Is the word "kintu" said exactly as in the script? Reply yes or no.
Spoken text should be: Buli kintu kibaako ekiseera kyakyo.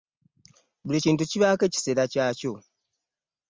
yes